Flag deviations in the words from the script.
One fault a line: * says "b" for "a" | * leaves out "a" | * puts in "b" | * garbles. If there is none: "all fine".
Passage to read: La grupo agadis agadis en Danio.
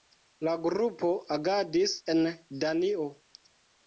* leaves out "agadis"